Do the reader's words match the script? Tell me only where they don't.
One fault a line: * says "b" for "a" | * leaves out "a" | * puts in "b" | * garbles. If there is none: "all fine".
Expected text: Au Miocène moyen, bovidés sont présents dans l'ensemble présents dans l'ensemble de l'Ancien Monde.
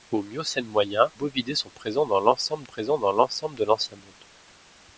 all fine